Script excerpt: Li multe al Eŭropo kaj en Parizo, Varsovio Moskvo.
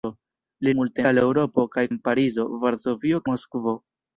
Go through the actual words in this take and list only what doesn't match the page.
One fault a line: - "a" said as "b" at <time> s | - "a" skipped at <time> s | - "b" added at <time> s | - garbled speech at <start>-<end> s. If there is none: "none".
none